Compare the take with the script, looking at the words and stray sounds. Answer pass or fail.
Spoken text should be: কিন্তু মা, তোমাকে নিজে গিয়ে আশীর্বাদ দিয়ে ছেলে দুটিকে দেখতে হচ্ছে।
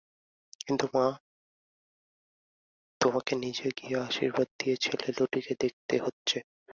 pass